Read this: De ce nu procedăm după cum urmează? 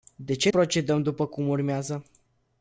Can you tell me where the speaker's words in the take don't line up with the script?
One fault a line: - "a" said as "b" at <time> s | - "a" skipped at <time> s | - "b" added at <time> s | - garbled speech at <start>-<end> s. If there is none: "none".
- "nu" skipped at 0.5 s